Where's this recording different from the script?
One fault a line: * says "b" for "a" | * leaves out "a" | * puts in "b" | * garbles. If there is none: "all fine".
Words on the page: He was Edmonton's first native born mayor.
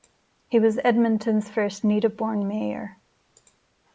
all fine